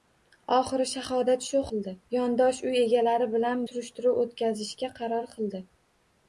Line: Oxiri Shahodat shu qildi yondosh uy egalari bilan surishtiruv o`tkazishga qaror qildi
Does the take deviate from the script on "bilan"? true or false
false